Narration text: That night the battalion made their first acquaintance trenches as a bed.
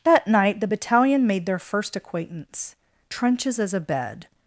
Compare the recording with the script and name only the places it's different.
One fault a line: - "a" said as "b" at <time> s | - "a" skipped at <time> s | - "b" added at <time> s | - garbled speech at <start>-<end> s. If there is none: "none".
none